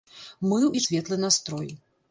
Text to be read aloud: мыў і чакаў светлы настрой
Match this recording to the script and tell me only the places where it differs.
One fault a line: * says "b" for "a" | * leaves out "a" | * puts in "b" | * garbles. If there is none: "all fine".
* leaves out "чакаў"